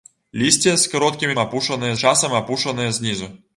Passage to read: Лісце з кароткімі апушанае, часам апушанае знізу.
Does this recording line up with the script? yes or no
yes